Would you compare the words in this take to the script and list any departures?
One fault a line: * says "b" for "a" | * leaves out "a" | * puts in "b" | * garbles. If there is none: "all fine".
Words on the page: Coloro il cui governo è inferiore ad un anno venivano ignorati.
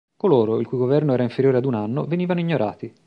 * says "era" for "è"